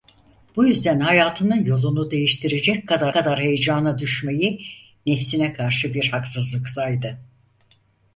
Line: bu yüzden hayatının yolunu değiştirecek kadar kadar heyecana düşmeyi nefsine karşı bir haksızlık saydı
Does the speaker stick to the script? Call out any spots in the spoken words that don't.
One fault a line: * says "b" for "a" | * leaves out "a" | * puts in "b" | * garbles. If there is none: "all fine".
all fine